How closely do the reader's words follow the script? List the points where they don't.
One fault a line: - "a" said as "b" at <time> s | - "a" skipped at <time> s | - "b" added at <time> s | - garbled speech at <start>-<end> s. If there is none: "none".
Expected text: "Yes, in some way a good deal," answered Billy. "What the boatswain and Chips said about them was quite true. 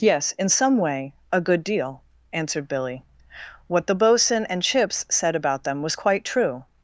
none